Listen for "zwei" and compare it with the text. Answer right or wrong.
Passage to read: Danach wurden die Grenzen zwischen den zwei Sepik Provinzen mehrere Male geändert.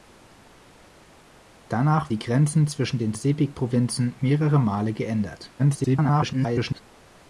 wrong